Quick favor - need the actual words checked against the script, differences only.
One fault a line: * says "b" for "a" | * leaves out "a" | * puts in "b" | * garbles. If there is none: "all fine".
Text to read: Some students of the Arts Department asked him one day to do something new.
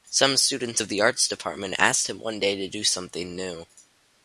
all fine